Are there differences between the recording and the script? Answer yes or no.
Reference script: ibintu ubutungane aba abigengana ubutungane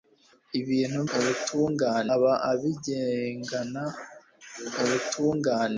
no